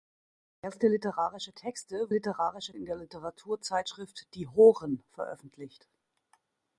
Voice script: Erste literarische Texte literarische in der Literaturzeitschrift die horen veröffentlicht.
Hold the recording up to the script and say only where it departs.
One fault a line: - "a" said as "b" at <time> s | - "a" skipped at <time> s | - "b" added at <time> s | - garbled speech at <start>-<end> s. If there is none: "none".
none